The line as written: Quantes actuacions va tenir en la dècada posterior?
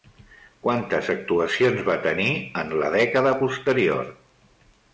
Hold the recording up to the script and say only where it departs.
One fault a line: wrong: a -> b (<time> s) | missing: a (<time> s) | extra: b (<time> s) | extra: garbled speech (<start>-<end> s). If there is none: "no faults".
no faults